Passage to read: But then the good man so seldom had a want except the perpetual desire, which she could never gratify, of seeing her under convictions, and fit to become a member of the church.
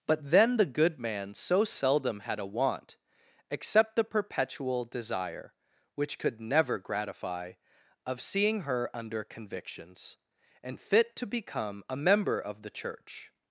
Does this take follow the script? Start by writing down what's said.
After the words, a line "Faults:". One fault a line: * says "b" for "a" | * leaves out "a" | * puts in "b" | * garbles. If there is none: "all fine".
But then the good man so seldom had a want except the perpetual desire, which could never gratify, of seeing her under convictions, and fit to become a member of the church.
Faults:
* leaves out "she"